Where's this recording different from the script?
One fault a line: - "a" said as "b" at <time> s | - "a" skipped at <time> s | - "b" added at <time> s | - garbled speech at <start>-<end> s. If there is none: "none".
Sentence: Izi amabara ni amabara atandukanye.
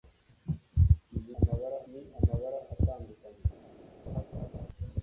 none